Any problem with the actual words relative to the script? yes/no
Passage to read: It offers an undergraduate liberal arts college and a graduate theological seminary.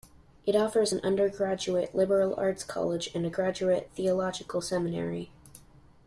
no